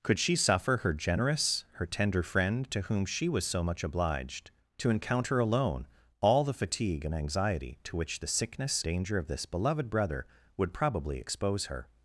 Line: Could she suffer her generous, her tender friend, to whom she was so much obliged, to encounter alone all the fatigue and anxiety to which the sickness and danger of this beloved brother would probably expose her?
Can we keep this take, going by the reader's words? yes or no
no